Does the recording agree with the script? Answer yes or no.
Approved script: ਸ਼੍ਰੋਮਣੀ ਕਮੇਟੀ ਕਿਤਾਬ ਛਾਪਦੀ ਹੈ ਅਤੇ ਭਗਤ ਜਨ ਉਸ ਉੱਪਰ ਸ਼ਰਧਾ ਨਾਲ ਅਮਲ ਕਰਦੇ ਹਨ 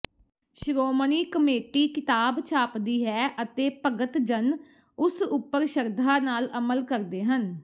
yes